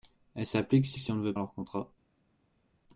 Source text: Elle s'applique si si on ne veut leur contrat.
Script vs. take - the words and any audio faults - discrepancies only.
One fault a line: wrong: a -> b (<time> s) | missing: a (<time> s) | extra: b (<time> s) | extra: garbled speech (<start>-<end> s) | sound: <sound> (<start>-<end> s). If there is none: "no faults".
no faults